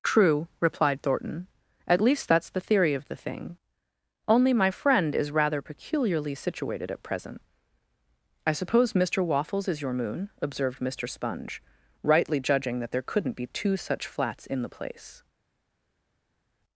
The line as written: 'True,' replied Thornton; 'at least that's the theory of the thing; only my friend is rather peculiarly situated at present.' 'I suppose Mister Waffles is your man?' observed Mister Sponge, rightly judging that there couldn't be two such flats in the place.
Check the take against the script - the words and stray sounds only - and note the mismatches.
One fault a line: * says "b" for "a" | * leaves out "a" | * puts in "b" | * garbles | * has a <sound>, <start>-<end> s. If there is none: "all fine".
* says "moon" for "man"